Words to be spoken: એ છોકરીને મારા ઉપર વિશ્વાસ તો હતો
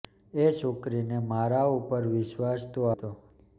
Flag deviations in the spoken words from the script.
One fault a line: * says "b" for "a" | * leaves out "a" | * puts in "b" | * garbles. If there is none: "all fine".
all fine